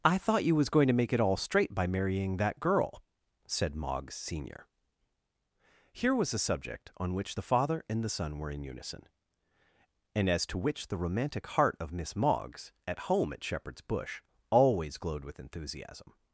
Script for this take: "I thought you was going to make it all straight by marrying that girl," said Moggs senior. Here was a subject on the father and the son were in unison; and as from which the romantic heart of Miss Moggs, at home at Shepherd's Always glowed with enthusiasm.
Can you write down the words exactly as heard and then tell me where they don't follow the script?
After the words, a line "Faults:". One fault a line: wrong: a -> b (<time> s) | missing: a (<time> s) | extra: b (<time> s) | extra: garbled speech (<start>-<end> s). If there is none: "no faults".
"I thought you was going to make it all straight by marrying that girl," said Moggs senior. Here was a subject on which the father and the son were in unison; and as to which the romantic heart of Miss Moggs, at home at Shepherd's Bush, always glowed with enthusiasm.
Faults:
extra: which (7.1 s)
wrong: from -> to (10.5 s)
extra: Bush (13.8 s)